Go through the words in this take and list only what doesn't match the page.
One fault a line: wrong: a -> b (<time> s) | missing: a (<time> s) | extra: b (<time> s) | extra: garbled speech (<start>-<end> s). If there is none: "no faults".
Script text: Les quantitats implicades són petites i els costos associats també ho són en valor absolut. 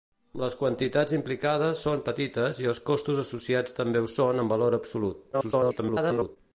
extra: garbled speech (5.3-6.4 s)